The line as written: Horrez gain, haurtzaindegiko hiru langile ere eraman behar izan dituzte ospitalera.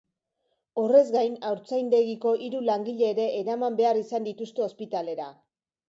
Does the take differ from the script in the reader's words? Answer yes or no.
no